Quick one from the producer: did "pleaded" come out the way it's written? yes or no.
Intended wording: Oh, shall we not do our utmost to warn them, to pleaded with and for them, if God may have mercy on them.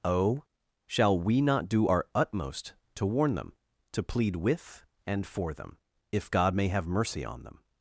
no